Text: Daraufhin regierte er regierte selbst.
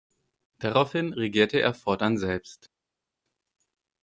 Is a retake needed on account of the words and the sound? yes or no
yes